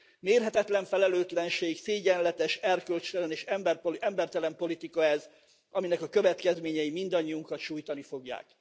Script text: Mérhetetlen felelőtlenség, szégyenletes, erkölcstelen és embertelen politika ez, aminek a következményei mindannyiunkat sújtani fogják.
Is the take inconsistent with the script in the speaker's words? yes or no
no